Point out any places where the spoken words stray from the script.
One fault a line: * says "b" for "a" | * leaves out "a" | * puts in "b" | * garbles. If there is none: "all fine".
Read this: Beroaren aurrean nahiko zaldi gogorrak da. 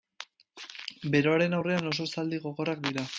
* says "oso" for "nahiko"
* says "dira" for "da"